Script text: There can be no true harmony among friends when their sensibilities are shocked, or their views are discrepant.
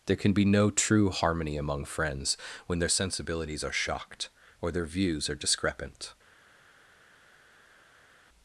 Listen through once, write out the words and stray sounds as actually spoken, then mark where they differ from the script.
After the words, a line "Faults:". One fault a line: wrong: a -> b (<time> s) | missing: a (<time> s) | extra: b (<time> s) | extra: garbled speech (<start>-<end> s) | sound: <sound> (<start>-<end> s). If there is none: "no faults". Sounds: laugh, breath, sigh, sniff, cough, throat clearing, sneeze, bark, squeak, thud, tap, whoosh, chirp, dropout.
There can be no true harmony among friends when their sensibilities are shocked, or their views are discrepant.
Faults:
no faults